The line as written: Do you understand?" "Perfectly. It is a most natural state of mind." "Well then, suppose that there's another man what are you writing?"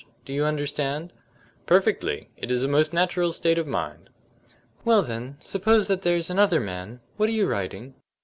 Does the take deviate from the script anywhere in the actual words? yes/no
no